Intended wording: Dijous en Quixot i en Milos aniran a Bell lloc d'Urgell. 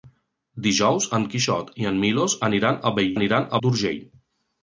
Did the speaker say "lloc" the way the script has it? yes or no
no